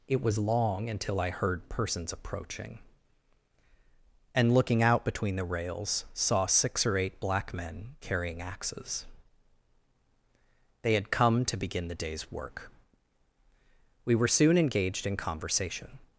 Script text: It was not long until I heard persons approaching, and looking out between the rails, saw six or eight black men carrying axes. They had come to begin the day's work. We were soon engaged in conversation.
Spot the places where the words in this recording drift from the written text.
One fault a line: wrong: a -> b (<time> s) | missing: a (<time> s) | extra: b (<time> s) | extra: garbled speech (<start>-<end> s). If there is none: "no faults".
missing: not (0.4 s)